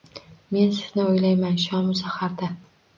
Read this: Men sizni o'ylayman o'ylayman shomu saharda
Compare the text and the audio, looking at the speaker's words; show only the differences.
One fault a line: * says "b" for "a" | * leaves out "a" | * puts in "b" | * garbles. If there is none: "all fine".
* leaves out "o'ylayman"